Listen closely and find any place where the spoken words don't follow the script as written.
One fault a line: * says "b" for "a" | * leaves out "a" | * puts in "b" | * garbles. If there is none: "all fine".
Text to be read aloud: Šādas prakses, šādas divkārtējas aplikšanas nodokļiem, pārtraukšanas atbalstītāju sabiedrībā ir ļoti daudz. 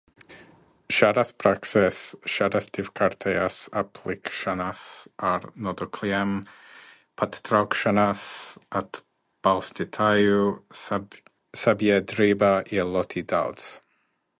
* puts in "ar"